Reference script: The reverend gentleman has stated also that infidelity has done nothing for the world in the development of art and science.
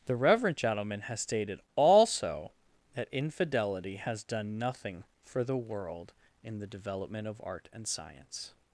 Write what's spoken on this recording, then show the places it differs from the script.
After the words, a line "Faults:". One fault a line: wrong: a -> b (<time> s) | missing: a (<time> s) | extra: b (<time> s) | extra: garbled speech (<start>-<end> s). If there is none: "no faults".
The reverend gentleman has stated also that infidelity has done nothing for the world in the development of art and science.
Faults:
no faults